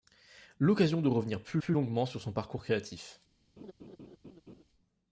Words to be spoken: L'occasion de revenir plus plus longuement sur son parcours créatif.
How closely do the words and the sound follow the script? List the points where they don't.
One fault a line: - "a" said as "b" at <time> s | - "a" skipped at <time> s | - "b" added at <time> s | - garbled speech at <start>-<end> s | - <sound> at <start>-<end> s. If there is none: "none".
- laugh at 3.6-4.6 s